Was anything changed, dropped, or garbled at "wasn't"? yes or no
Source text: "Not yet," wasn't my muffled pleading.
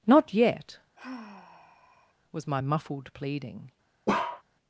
yes